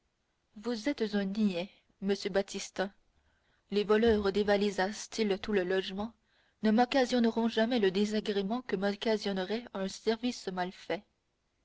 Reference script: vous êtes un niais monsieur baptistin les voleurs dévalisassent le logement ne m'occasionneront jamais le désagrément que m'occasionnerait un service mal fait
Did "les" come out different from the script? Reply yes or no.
no